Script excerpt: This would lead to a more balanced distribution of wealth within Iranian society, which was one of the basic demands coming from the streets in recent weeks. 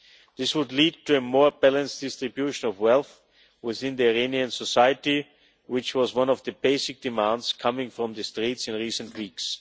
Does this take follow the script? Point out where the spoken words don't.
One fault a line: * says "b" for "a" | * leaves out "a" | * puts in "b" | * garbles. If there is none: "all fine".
all fine